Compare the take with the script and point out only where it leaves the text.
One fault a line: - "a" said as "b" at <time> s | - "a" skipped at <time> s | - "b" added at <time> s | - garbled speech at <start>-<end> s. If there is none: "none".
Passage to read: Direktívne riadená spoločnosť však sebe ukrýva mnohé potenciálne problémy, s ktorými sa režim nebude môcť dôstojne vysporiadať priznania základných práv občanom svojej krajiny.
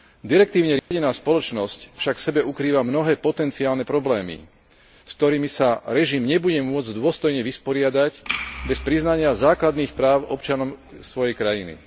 - "v" added at 2.2 s
- "bez" added at 8.6 s